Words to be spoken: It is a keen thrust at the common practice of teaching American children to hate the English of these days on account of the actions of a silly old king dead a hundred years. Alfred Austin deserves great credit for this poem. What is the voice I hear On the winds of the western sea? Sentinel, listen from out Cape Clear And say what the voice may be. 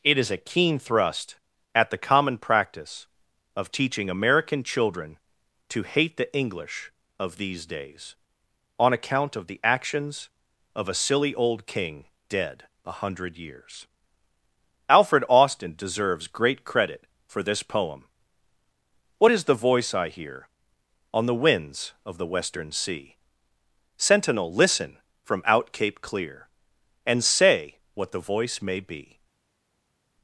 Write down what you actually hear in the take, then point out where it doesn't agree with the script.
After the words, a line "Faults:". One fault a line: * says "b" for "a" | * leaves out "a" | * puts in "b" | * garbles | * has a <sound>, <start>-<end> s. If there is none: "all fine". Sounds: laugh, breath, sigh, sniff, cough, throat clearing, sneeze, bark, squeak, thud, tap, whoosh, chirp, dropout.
It is a keen thrust at the common practice of teaching American children to hate the English of these days on account of the actions of a silly old king dead a hundred years. Alfred Austin deserves great credit for this poem. What is the voice I hear On the winds of the western sea? Sentinel, listen from out Cape Clear And say what the voice may be.
Faults:
all fine